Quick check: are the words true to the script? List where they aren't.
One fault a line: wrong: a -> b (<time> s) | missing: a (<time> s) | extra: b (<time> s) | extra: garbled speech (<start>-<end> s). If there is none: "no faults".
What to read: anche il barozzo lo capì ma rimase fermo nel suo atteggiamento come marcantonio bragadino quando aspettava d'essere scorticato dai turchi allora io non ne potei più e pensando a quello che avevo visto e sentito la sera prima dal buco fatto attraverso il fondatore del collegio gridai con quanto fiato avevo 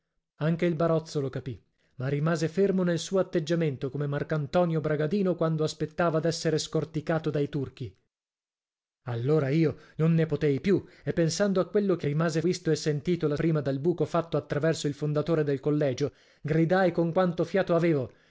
wrong: avevo -> rimase (12.0 s)
missing: sera (13.4 s)